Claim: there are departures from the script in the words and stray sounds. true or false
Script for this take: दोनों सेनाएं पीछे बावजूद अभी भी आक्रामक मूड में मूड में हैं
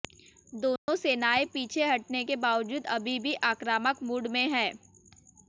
true